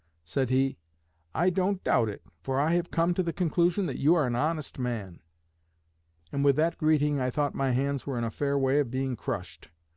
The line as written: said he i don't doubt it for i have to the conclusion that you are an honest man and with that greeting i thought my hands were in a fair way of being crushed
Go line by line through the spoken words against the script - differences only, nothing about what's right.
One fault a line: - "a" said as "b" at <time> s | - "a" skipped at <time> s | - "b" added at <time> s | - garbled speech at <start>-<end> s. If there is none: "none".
- "come" added at 2.9 s